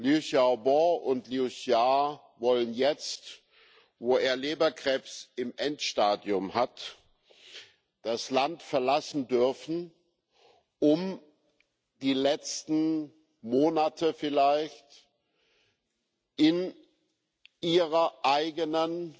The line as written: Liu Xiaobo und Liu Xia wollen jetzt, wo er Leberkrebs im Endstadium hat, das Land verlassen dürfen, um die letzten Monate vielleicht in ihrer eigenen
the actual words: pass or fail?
pass